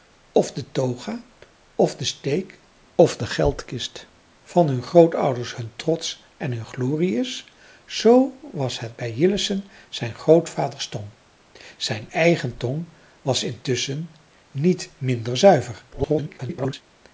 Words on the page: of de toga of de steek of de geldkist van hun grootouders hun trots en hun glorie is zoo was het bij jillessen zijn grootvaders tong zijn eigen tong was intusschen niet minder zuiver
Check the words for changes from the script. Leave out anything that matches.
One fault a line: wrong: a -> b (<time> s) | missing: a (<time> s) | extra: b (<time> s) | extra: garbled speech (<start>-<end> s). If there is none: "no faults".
extra: garbled speech (15.9-16.8 s)